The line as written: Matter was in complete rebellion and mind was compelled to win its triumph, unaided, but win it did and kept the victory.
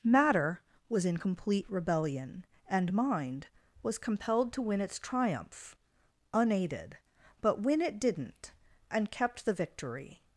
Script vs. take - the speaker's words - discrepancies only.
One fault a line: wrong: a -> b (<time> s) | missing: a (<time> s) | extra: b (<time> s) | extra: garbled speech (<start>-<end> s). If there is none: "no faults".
wrong: did -> didn't (8.0 s)